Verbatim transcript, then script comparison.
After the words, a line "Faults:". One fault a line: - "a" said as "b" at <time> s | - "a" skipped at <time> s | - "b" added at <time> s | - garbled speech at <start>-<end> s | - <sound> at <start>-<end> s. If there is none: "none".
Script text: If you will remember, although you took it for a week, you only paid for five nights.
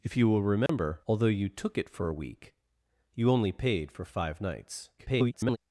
If you will remember, although you took it for a week, you only paid for five nights. [garbled]
Faults:
- dropout at 0.7-0.7 s
- garbled speech at 5.0-5.6 s